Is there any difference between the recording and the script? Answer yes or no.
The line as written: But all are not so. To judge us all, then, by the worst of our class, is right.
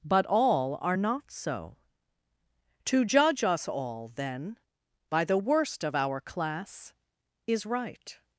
no